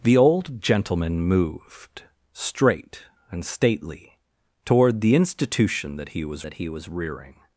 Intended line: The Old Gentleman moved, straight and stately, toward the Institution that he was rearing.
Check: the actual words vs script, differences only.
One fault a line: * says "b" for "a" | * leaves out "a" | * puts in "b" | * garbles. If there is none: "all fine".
* puts in "that he was"